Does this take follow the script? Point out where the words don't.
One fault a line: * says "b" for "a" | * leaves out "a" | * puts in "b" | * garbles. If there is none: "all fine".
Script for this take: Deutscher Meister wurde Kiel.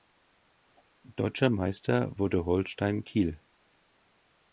* puts in "Holstein"